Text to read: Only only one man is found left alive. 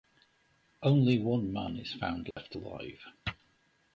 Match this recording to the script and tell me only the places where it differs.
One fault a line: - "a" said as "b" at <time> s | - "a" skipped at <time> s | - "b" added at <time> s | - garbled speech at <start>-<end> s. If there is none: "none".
- "only" skipped at 1.2 s